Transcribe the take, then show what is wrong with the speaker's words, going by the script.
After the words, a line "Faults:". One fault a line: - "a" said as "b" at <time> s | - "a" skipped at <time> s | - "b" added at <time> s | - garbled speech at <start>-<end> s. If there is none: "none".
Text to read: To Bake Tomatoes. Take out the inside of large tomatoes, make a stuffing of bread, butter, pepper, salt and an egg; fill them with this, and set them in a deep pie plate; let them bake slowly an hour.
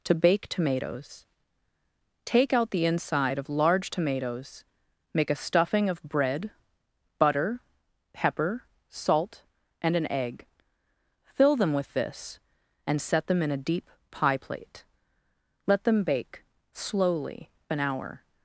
To Bake Tomatoes. Take out the inside of large tomatoes, make a stuffing of bread, butter, pepper, salt and an egg; fill them with this, and set them in a deep pie plate; let them bake slowly an hour.
Faults:
none